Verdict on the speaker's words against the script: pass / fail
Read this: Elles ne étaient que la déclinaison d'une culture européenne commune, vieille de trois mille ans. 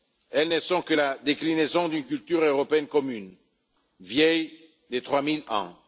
fail